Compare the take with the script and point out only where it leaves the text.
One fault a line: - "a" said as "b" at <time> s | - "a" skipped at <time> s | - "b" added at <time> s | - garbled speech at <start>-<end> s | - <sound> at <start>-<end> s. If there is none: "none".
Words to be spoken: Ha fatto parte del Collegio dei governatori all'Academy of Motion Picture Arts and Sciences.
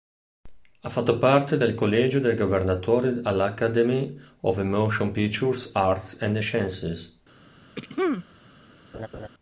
- throat clearing at 7.8-8.3 s
- laugh at 8.9-9.3 s